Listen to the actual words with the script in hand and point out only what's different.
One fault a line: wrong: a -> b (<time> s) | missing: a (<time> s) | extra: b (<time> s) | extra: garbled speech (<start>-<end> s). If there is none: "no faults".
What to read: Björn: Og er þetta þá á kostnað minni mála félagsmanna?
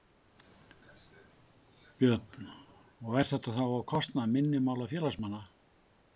no faults